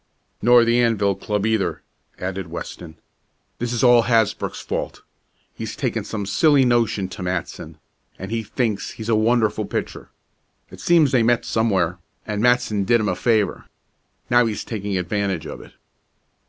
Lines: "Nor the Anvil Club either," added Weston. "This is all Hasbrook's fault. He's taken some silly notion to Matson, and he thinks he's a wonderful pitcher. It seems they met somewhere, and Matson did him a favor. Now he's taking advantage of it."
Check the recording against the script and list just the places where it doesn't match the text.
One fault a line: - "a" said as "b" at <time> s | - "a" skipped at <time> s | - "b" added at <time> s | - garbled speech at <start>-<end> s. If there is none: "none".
none